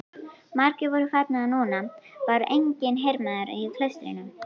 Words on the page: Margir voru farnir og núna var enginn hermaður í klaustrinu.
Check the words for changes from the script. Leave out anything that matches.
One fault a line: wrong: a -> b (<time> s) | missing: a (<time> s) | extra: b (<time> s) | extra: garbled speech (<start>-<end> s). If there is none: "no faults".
no faults